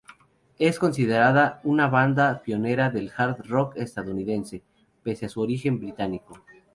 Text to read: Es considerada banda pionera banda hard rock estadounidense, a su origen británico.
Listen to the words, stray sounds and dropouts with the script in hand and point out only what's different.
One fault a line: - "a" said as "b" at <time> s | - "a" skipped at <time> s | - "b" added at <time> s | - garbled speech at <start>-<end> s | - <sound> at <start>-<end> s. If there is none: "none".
- "una" added at 1.6 s
- "banda" said as "del" at 2.9 s
- "pese" added at 5.0 s